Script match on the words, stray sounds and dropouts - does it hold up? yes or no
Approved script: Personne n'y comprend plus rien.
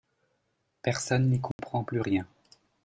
no